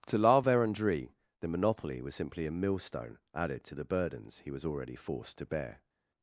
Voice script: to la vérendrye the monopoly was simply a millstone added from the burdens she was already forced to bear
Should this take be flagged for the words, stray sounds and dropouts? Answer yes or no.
yes